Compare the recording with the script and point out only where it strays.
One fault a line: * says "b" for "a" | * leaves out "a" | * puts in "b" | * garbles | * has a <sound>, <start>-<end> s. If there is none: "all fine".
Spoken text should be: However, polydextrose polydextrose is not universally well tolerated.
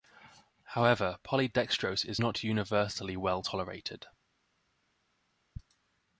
* leaves out "polydextrose"